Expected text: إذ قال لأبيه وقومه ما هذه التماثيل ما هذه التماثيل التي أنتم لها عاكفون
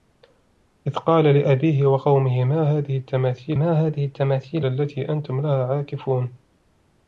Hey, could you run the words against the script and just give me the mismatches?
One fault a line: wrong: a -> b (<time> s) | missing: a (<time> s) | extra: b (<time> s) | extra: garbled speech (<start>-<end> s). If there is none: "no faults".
no faults